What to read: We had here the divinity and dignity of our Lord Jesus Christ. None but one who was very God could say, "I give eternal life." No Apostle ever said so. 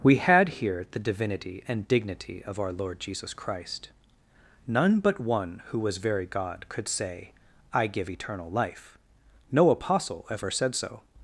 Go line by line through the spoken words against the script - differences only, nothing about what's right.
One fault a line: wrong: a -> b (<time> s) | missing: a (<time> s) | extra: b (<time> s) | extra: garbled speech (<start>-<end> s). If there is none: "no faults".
no faults